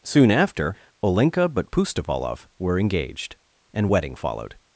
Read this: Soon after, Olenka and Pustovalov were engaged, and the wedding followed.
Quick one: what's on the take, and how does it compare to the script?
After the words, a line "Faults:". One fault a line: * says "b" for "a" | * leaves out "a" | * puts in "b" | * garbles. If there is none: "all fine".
Soon after, Olenka but Pustovalov were engaged, and wedding followed.
Faults:
* says "but" for "and"
* leaves out "the"